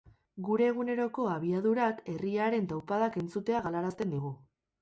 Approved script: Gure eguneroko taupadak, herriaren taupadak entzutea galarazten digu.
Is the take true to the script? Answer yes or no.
no